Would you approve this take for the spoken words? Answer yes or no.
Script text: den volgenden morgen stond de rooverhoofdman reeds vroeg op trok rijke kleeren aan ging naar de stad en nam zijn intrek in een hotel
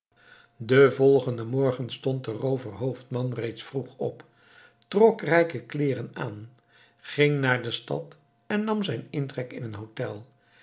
yes